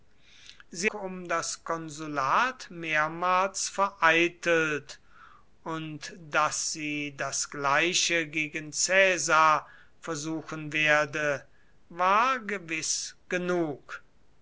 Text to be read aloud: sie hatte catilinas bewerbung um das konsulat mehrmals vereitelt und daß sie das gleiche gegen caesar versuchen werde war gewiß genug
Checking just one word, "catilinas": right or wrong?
wrong